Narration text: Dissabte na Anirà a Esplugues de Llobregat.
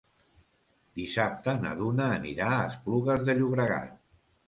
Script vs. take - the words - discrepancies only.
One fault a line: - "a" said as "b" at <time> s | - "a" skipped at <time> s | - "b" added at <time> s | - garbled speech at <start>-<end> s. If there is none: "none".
- "Duna" added at 1.8 s